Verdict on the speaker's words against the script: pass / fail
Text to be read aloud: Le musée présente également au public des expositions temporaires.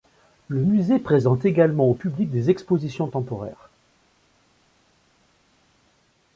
pass